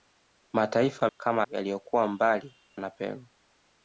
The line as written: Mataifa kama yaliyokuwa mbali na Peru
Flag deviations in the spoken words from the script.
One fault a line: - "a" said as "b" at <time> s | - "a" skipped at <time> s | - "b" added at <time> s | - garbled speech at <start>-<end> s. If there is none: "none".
none